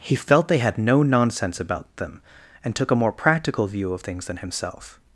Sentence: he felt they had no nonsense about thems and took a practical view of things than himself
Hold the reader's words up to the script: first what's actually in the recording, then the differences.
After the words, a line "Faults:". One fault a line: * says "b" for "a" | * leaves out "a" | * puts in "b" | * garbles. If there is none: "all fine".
he felt they had no nonsense about them and took a more practical view of things than himself
Faults:
* says "them" for "thems"
* puts in "more"